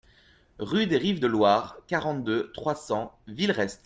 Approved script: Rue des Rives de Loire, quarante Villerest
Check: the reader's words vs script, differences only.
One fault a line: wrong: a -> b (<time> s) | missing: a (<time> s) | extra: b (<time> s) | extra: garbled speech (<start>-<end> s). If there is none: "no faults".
extra: deux trois cents (2.2 s)